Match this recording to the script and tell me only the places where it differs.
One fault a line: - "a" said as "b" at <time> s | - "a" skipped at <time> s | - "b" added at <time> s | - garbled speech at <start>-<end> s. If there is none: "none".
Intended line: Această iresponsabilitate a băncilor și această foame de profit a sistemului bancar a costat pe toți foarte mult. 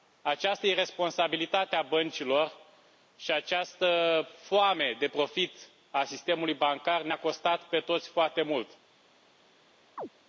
- "ne" added at 7.0 s